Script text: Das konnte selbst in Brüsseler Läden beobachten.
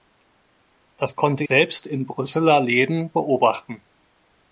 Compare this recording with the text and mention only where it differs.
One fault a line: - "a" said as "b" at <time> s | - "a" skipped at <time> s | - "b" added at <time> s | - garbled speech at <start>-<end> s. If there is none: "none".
none